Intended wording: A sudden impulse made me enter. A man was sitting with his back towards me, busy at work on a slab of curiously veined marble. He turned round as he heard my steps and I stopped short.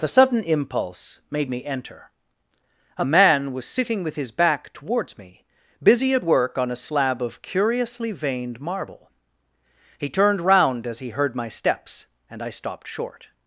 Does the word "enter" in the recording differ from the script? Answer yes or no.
no